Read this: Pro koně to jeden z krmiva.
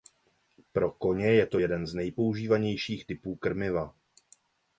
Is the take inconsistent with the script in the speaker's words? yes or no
yes